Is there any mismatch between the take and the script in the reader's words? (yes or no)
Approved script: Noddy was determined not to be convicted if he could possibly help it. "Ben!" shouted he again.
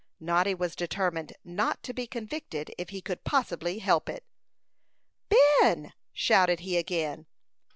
no